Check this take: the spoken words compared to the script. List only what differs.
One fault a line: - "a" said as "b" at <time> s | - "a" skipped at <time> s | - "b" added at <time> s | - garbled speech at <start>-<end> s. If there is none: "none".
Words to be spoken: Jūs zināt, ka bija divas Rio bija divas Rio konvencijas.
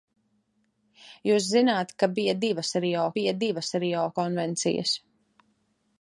none